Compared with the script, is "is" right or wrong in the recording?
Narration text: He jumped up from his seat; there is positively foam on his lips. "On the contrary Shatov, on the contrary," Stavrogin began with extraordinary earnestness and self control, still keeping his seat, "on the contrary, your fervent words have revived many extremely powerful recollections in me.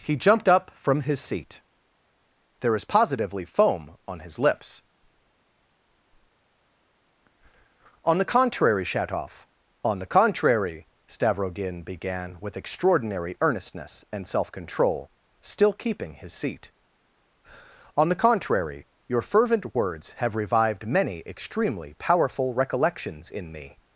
right